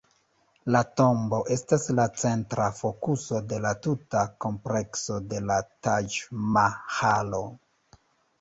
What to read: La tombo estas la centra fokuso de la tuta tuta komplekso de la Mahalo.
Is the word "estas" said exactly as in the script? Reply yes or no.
yes